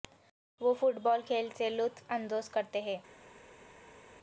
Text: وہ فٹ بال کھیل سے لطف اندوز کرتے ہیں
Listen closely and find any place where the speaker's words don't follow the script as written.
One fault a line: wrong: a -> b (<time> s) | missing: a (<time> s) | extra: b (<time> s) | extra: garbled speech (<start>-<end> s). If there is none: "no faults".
no faults